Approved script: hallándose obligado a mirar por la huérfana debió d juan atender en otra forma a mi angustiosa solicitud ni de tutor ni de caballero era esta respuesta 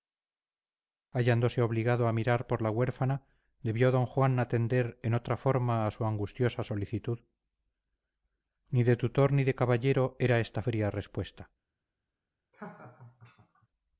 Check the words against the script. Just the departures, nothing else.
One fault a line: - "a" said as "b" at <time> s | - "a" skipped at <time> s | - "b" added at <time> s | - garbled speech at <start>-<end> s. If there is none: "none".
- "mi" said as "su" at 5.9 s
- "fría" added at 10.6 s